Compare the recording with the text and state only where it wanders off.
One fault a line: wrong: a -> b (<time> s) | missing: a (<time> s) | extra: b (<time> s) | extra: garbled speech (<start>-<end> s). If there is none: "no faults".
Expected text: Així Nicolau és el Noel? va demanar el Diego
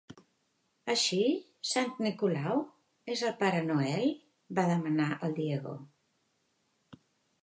extra: Sant (1.7 s)
extra: Pare (3.4 s)